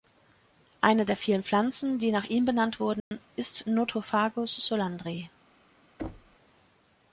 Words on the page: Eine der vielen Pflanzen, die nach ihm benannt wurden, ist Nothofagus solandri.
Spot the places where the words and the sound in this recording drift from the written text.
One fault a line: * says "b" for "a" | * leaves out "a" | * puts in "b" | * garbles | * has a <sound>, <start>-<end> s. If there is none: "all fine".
* has a dropout, 3.0-3.1 s
* has a thud, 6.0-6.4 s